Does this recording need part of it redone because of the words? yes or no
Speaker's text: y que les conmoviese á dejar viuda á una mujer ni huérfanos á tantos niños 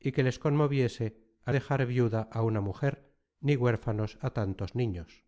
no